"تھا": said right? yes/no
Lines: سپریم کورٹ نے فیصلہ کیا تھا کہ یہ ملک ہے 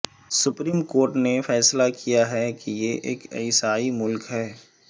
no